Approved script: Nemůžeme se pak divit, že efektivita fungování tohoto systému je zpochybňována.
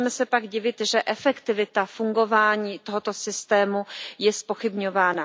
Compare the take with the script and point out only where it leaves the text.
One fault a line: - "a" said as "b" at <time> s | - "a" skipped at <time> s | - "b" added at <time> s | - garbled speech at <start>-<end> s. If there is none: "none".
none